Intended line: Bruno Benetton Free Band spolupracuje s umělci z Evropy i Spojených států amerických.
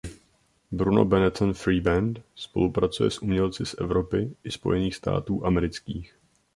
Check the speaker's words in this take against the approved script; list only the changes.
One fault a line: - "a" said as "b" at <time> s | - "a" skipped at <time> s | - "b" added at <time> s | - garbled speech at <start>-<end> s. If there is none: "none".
none